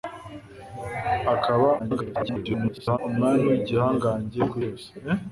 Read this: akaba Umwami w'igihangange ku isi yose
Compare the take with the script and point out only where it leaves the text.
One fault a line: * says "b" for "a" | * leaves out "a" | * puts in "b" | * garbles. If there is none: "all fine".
* garbles
* leaves out "isi"